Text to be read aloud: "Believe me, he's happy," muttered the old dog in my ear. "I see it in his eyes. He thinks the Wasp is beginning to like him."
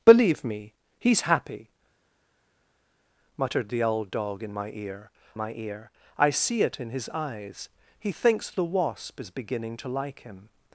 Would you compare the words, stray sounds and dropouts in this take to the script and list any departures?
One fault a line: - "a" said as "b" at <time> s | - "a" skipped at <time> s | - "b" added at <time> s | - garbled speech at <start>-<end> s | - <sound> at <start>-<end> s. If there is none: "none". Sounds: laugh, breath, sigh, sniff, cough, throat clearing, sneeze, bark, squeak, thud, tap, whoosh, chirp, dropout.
- "my ear" added at 5.3 s